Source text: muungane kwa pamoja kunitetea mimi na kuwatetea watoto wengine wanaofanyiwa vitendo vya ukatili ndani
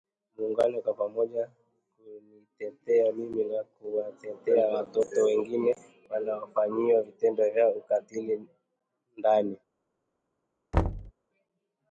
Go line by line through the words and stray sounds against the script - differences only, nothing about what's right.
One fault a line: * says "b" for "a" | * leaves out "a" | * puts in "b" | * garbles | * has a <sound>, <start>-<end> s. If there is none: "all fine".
* has a thud, 10.7-11.1 s